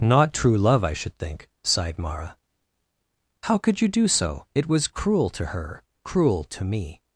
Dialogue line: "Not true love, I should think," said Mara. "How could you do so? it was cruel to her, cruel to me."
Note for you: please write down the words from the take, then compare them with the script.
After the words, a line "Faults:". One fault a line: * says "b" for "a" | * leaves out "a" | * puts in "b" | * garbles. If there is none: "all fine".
"Not true love, I should think," sighed Mara. "How could you do so? it was cruel to her, cruel to me."
Faults:
* says "sighed" for "said"